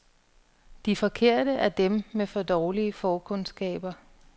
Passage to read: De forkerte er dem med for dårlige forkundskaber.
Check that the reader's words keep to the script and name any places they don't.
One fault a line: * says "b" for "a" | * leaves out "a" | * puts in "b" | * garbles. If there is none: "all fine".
all fine